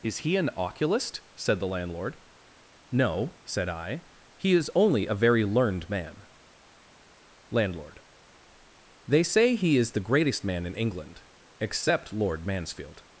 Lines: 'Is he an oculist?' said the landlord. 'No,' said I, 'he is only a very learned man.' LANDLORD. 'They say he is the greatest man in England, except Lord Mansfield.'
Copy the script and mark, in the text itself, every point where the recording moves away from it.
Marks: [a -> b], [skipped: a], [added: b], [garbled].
'Is he an oculist?' said the landlord. 'No,' said I, 'he is only a very learned man.' LANDLORD. 'They say he is the greatest man in England, except Lord Mansfield.'